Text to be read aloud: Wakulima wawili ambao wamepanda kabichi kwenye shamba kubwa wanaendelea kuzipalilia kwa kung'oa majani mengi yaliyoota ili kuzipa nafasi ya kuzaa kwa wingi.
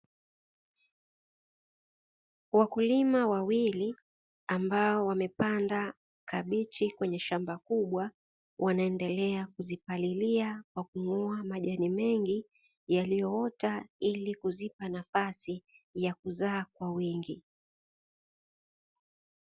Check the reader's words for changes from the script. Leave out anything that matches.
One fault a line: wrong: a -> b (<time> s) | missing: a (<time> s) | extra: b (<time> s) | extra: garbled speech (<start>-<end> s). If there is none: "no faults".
no faults